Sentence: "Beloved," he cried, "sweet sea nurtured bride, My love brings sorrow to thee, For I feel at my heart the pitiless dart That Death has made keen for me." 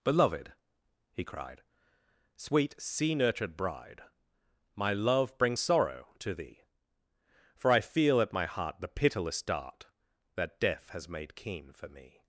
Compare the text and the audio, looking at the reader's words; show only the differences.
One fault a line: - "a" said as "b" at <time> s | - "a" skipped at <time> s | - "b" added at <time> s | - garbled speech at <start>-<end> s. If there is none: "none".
none